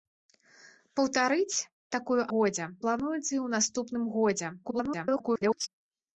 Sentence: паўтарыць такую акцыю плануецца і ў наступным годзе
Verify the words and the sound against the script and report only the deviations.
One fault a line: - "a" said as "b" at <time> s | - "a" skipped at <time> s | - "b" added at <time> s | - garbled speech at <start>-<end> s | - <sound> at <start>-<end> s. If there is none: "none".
- "акцыю" said as "годзе" at 2.4 s
- garbled speech at 4.6-5.7 s